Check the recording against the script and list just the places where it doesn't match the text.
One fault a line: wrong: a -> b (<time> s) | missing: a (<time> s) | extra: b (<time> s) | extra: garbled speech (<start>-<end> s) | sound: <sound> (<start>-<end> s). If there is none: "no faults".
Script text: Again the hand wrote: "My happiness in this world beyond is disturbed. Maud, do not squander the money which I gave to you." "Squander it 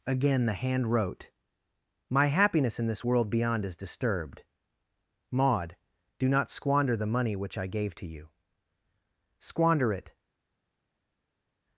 no faults